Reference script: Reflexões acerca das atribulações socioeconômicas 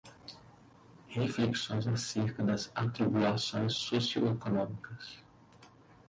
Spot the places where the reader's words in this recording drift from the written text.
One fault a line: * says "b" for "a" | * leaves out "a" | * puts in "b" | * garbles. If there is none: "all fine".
all fine